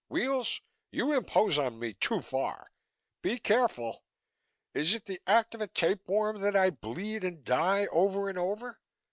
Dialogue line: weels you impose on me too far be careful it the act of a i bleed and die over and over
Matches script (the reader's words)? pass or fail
fail